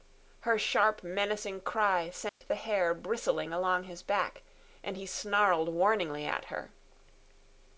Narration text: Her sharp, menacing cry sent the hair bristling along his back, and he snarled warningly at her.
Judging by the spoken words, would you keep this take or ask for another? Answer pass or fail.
pass